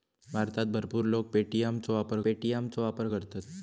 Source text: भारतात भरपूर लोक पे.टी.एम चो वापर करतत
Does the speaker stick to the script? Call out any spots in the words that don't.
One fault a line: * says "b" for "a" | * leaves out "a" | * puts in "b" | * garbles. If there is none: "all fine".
* puts in "पे.टी.एम चो वापर"